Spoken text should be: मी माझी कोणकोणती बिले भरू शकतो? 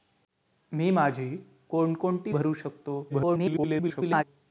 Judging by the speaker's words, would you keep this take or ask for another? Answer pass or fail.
fail